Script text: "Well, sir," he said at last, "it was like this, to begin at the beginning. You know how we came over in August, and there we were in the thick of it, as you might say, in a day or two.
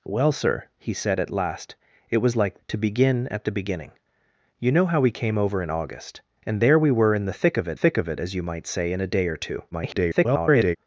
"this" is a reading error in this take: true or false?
true